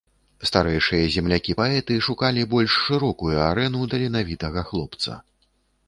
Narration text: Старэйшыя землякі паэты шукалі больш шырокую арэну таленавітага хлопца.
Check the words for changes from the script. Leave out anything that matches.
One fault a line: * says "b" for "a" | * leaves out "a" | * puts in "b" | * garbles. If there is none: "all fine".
all fine